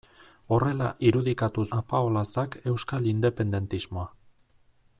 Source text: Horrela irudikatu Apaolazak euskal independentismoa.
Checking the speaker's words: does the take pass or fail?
pass